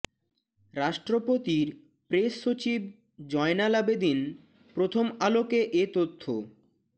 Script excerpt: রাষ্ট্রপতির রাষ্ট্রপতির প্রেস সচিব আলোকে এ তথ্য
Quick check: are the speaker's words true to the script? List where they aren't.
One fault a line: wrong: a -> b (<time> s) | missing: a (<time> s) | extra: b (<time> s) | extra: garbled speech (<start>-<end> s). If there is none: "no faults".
missing: রাষ্ট্রপতির (1.7 s)
extra: জয়নাল আবেদীন প্রথম (3.3 s)